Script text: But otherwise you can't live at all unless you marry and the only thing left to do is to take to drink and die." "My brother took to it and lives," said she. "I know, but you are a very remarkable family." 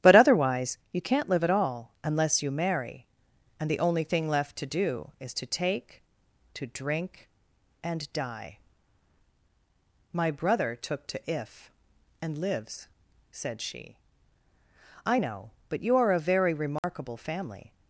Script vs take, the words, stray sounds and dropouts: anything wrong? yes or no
yes